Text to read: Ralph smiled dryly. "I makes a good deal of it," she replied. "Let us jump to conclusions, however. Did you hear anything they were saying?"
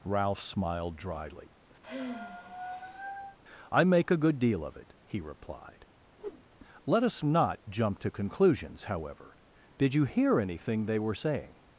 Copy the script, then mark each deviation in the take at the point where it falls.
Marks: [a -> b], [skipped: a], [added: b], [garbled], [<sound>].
Ralph smiled dryly. [sigh] "I [makes -> make] a good deal of it," [she -> he] replied. [whoosh] "Let us [added: not] jump to conclusions, however. Did you hear anything they were saying?"